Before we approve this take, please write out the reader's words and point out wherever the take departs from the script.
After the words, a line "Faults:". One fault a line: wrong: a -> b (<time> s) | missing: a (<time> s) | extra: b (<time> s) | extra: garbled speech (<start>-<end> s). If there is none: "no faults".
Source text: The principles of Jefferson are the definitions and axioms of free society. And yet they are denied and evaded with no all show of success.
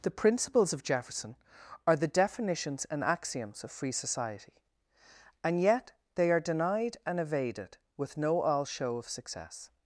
The principles of Jefferson are the definitions and axioms of free society. And yet they are denied and evaded with no all show of success.
Faults:
no faults